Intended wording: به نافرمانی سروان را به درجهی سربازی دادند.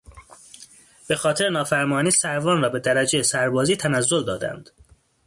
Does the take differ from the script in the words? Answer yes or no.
yes